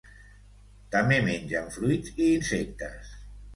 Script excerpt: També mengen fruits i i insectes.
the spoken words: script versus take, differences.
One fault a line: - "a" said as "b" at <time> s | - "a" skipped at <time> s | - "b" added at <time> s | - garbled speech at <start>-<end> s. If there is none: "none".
- "i" skipped at 2.3 s